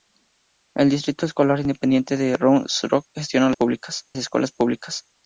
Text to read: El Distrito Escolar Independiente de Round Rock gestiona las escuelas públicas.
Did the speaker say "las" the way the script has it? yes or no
no